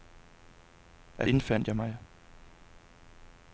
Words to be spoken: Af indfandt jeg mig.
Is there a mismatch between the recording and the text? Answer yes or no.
no